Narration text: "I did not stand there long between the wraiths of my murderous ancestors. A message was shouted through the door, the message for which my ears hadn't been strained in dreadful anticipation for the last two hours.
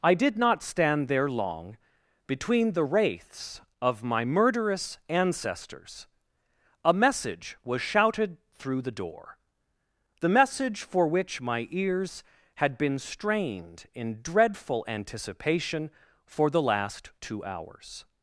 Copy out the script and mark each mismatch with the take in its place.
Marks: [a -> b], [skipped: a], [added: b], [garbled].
"I did not stand there long between the wraiths of my murderous ancestors. A message was shouted through the door, the message for which my ears [hadn't -> had] been strained in dreadful anticipation for the last two hours.